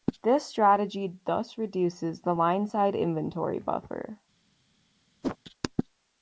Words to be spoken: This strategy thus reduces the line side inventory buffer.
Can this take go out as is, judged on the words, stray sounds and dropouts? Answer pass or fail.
fail